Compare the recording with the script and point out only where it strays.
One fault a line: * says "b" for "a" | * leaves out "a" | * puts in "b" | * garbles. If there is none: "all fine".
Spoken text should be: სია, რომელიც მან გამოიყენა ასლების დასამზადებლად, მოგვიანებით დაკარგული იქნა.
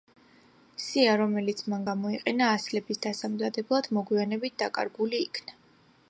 all fine